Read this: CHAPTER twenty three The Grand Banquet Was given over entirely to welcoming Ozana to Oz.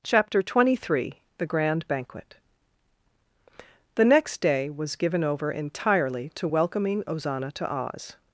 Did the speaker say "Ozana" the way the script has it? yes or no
yes